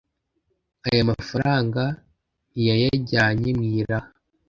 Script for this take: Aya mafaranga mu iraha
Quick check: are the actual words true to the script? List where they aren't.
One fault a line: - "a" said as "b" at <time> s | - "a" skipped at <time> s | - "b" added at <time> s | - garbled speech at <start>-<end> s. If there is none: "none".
- "ntiyayajyanye" added at 2.5 s